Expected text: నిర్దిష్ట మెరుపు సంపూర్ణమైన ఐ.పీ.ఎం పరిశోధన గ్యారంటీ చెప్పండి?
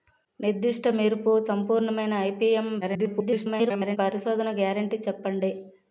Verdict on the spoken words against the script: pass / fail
fail